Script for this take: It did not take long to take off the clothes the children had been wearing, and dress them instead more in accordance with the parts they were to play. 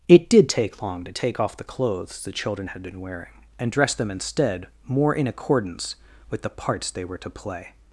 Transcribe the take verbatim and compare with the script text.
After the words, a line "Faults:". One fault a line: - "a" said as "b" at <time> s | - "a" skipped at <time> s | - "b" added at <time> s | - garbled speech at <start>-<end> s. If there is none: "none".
It did take long to take off the clothes the children had been wearing, and dress them instead more in accordance with the parts they were to play.
Faults:
- "not" skipped at 0.5 s